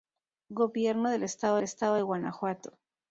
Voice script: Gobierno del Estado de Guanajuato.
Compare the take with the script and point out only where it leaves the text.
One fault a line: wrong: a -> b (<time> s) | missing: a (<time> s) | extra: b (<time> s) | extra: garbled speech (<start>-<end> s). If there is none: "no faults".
extra: Estado (1.6 s)